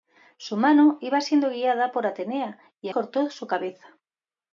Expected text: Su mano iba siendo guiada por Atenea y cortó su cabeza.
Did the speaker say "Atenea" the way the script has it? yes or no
yes